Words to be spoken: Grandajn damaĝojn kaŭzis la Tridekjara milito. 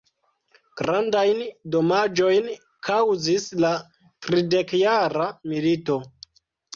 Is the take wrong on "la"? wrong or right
right